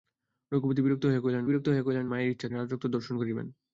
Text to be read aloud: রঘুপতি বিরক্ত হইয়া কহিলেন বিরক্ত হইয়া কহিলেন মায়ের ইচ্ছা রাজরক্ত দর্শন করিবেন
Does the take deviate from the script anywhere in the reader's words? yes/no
no